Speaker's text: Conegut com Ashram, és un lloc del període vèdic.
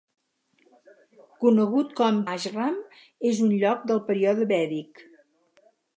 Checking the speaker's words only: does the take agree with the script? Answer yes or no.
yes